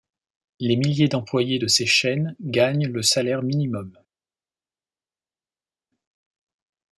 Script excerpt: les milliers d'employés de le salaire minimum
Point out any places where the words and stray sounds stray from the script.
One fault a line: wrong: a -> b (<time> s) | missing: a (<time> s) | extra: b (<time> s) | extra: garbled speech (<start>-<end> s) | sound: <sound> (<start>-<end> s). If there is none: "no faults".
extra: ces chaînes gagnent (1.7 s)